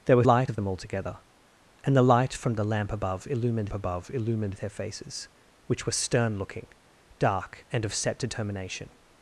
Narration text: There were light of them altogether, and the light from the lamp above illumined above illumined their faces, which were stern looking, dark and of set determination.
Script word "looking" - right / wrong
right